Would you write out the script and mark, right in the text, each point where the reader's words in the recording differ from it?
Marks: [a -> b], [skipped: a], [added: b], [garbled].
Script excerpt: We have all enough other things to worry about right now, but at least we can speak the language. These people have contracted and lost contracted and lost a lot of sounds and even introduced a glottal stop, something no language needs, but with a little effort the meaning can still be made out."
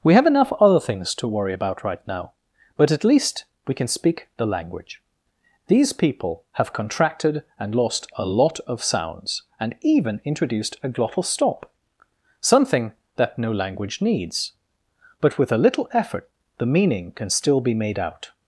We have [skipped: all] enough other things to worry about right now, but at least we can speak the language. These people have contracted and lost [skipped: contracted and lost] a lot of sounds and even introduced a glottal stop, something [added: that] no language needs, but with a little effort the meaning can still be made out."